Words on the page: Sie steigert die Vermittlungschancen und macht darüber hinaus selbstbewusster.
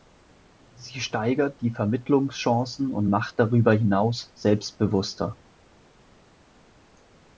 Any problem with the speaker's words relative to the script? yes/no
no